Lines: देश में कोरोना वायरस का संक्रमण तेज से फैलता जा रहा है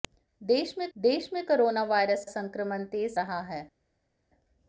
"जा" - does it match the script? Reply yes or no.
no